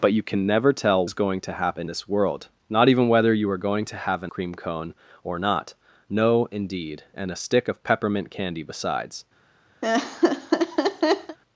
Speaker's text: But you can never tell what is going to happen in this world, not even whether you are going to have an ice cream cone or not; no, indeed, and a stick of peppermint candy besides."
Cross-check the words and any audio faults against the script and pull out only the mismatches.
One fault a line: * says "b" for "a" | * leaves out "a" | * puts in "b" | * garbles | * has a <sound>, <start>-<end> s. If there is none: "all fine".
* leaves out "what"
* leaves out "in"
* leaves out "ice"
* has a laugh, 9.8-11.4 s